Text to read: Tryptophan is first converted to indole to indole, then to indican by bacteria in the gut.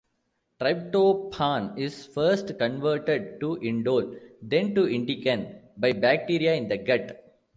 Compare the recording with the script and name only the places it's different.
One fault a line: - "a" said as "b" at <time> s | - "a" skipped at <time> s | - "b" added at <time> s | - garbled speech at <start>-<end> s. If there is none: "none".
- "to indole" skipped at 4.2 s